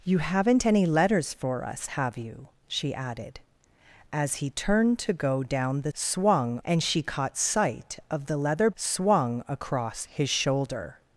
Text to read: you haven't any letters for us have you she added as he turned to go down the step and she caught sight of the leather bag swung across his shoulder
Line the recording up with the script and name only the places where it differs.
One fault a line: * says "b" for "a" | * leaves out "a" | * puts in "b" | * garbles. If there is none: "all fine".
* says "swung" for "step"
* leaves out "bag"